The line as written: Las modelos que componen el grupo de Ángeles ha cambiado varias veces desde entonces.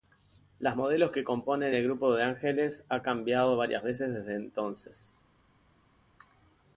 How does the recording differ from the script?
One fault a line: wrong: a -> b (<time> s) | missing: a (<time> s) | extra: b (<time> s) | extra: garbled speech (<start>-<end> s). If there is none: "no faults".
no faults